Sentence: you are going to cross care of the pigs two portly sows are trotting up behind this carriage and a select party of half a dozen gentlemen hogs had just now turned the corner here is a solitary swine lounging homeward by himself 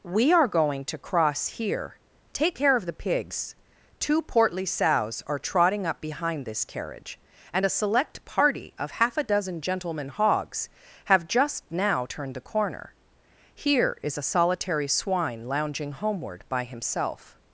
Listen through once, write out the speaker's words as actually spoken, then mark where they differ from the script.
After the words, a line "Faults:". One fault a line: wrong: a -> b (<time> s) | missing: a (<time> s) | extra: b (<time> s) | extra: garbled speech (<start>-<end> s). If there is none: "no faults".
we are going to cross here take care of the pigs two portly sows are trotting up behind this carriage and a select party of half a dozen gentlemen hogs have just now turned the corner here is a solitary swine lounging homeward by himself
Faults:
wrong: you -> we (0.0 s)
extra: here take (1.5 s)
wrong: had -> have (11.1 s)